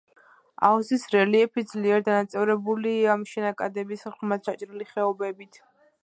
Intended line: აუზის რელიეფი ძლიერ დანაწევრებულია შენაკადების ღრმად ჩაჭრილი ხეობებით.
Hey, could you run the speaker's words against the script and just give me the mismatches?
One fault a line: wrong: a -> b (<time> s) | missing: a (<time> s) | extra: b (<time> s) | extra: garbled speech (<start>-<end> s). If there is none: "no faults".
no faults